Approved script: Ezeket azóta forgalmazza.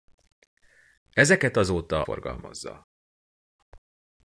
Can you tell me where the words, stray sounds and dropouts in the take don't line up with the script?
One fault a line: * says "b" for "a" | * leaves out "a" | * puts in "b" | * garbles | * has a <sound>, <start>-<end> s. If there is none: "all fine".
all fine